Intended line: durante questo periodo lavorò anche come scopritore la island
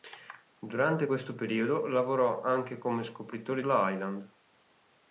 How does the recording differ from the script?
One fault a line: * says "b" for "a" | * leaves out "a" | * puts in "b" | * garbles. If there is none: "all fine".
all fine